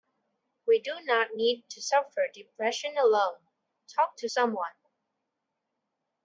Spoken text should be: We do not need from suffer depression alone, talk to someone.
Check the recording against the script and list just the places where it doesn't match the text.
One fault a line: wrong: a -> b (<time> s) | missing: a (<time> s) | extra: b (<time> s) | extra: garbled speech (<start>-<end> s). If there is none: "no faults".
wrong: from -> to (1.7 s)